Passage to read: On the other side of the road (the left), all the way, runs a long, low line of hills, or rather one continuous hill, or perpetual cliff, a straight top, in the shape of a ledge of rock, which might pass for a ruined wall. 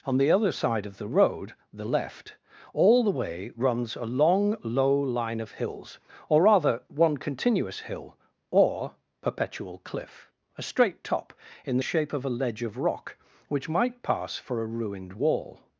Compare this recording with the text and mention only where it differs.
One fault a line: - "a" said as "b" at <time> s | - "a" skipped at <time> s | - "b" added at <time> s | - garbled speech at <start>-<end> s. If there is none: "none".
none